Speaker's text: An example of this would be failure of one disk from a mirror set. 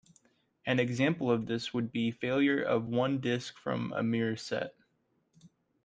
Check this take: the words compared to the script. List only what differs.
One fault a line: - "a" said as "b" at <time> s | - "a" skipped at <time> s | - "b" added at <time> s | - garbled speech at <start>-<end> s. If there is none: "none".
none